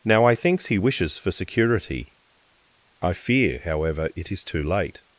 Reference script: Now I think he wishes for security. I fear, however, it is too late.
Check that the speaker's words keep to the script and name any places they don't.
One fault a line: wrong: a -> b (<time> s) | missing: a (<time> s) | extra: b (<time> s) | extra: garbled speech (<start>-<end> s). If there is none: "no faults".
wrong: think -> thinks (0.3 s)